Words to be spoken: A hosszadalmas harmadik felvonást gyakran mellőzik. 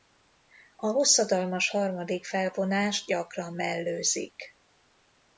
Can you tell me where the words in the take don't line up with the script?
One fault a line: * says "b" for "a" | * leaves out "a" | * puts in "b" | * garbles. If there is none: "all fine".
all fine